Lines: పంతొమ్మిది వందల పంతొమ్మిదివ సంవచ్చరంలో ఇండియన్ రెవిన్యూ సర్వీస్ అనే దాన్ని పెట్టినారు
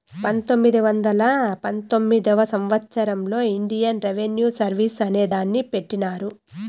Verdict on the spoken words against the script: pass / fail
pass